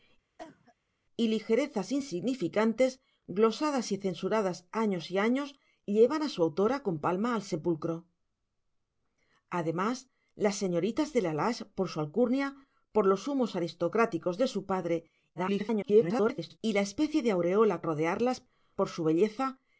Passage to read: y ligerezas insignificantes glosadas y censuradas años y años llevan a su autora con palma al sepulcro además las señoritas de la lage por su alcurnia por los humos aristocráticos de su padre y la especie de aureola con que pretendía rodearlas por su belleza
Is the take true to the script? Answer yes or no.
no